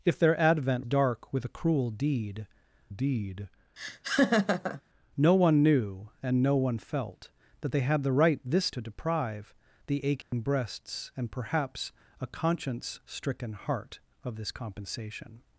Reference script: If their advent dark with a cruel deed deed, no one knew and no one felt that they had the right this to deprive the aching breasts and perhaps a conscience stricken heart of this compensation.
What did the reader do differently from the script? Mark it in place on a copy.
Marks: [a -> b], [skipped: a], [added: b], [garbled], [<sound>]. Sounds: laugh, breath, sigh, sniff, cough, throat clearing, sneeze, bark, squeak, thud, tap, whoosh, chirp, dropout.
If their advent dark with a cruel deed deed, [laugh] no one knew and no one felt that they had the right this to deprive the aching [dropout] breasts and perhaps a conscience stricken heart of this compensation.